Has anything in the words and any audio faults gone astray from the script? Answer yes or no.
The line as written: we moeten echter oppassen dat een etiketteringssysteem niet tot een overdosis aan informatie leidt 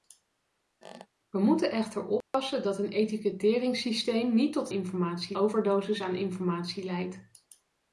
yes